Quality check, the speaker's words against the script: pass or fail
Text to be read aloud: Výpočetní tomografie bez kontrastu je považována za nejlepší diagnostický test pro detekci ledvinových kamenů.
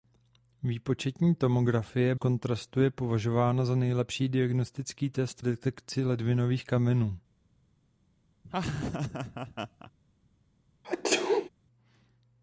fail